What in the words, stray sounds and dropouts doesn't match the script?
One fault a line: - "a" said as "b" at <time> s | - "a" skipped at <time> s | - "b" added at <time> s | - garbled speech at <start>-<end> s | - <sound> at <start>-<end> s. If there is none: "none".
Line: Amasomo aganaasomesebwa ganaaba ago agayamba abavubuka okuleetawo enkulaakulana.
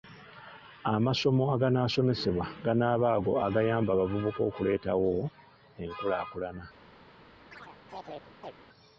- chirp at 7.5-8.5 s